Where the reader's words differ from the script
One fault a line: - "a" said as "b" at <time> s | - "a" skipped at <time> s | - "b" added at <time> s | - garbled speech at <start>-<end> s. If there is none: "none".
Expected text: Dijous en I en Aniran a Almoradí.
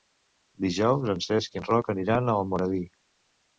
- "Cesc" added at 1.3 s
- "Roc" added at 1.7 s